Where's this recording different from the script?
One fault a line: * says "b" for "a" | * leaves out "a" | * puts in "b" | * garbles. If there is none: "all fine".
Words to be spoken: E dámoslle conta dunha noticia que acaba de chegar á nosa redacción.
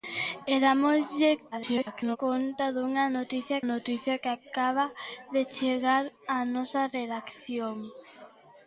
* garbles
* puts in "noticia"